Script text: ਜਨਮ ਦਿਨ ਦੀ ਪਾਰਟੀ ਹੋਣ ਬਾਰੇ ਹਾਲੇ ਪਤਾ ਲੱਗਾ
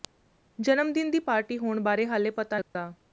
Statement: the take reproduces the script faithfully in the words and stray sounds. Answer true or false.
false